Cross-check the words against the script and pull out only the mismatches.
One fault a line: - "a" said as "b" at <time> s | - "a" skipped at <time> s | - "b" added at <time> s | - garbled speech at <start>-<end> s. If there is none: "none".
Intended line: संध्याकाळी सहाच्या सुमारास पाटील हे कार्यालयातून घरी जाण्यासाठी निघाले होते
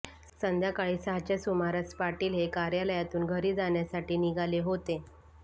none